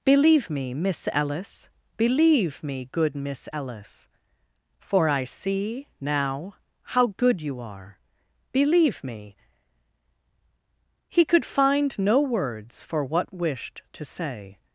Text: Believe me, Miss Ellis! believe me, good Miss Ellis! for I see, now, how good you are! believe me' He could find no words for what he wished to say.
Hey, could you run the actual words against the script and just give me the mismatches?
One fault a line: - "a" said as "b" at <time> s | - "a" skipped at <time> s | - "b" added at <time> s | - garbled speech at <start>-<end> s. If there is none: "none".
- "he" skipped at 13.3 s